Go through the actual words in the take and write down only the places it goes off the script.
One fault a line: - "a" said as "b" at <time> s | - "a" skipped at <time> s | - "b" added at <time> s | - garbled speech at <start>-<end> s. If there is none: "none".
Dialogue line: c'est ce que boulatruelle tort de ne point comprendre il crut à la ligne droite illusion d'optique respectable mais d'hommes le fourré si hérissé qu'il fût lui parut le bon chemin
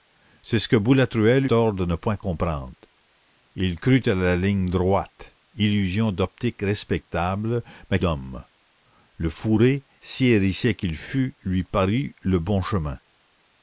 none